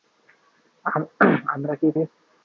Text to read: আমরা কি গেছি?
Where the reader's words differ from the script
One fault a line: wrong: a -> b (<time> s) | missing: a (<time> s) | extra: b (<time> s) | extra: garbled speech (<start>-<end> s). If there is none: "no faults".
no faults